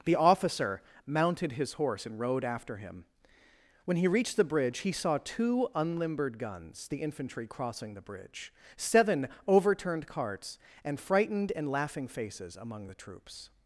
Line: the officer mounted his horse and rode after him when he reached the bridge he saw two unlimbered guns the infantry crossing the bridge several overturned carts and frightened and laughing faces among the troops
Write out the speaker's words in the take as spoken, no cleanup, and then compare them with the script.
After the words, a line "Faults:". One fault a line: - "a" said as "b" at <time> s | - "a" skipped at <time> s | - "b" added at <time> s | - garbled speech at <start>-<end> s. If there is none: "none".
the officer mounted his horse and rode after him when he reached the bridge he saw two unlimbered guns the infantry crossing the bridge seven overturned carts and frightened and laughing faces among the troops
Faults:
- "several" said as "seven" at 8.8 s